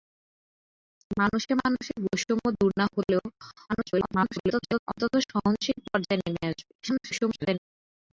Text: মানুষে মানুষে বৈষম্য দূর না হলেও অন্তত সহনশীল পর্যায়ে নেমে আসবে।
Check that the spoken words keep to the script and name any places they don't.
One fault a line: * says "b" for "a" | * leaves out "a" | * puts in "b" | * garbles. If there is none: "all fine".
* garbles
* garbles